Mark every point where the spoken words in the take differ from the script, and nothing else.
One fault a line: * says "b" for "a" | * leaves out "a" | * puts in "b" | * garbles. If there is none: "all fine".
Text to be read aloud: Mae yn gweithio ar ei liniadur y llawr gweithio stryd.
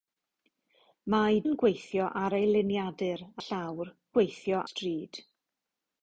all fine